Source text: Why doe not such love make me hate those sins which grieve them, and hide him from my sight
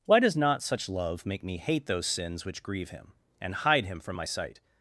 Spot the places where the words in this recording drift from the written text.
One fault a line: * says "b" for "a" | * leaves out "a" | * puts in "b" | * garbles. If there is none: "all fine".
* says "does" for "doe"
* says "him" for "them"